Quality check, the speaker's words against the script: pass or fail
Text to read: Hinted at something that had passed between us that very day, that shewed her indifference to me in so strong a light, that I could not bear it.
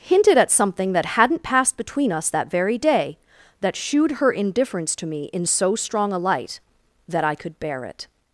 fail